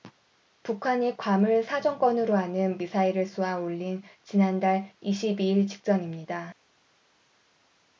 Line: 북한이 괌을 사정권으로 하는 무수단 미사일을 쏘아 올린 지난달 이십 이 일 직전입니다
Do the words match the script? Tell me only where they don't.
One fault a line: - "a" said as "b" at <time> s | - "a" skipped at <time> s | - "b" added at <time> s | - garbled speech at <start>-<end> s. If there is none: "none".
- "무수단" skipped at 2.8 s